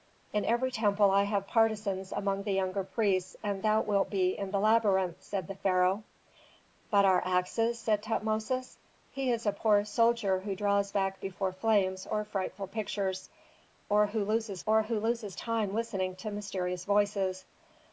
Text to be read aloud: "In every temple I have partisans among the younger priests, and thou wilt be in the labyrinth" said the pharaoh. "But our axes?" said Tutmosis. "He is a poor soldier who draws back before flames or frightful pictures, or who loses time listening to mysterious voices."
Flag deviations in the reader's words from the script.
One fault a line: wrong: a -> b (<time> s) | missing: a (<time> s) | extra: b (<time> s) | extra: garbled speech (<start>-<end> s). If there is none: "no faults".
extra: or who loses (14.7 s)